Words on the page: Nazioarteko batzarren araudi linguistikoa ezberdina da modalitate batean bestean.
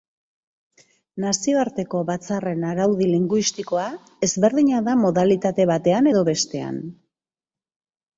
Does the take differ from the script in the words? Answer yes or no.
yes